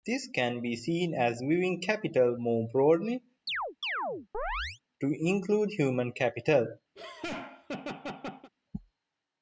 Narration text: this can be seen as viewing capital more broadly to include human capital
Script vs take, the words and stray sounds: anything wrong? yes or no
yes